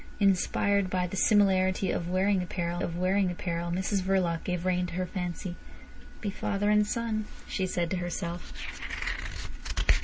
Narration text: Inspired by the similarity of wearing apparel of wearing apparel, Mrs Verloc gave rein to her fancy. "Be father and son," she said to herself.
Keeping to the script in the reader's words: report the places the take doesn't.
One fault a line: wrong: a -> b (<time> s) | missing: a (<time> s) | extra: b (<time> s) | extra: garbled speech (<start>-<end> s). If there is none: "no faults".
no faults